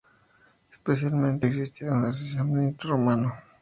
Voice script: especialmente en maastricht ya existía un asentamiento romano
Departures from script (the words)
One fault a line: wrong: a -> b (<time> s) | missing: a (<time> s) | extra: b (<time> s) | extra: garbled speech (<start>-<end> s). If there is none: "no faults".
missing: en maastricht ya (1.4 s)